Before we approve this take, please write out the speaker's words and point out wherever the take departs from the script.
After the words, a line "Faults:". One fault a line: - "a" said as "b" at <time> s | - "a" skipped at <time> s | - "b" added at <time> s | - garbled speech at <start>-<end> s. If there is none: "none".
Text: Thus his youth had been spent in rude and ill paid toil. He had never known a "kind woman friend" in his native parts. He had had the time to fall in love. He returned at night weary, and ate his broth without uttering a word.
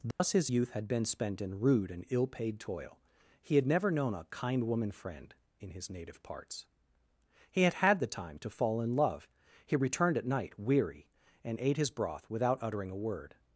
Thus his youth had been spent in rude and ill paid toil. He had never known a "kind woman friend" in his native parts. He had had the time to fall in love. He returned at night weary, and ate his broth without uttering a word.
Faults:
none